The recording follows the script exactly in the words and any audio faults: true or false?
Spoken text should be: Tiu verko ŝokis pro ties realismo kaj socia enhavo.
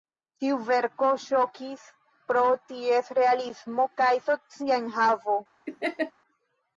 false